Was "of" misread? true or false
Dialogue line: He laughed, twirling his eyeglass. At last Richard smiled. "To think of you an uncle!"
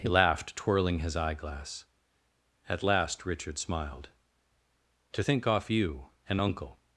true